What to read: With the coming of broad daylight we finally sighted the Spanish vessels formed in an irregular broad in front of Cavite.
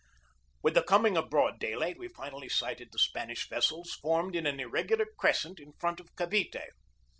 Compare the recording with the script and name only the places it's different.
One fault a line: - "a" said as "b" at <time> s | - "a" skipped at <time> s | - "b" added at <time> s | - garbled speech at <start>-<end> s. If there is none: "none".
- "broad" said as "crescent" at 5.2 s